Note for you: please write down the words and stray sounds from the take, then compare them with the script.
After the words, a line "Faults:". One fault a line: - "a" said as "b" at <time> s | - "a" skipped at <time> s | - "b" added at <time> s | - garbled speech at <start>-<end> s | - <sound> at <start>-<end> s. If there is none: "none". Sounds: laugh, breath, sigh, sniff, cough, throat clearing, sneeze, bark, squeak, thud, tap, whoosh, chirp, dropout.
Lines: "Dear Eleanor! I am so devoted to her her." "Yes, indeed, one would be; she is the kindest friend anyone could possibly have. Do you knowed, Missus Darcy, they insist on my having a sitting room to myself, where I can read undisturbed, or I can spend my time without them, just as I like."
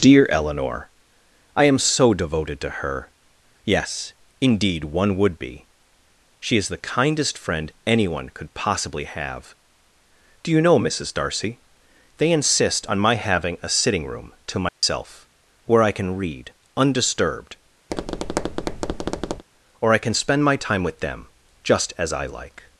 "Dear Eleanor! I am so devoted to her." "Yes, indeed, one would be; she is the kindest friend anyone could possibly have. Do you know, Missus Darcy, they insist on my having a sitting room to myself, where I can read undisturbed, or I can spend my time with them, just as I like."
Faults:
- "her" skipped at 3.1 s
- "knowed" said as "know" at 10.6 s
- dropout at 14.7-14.8 s
- tap at 17.9-19.4 s
- "without" said as "with" at 20.8 s